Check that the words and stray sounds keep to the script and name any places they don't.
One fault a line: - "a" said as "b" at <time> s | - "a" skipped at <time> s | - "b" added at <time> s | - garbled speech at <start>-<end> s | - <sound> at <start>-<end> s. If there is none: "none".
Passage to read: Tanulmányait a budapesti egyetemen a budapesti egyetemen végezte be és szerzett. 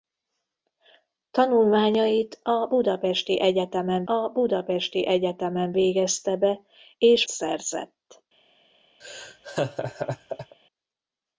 - laugh at 9.0-10.6 s